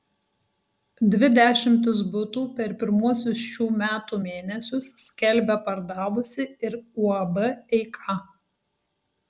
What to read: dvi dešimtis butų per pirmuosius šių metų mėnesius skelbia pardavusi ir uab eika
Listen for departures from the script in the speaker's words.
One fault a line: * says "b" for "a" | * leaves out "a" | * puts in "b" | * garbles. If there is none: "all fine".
all fine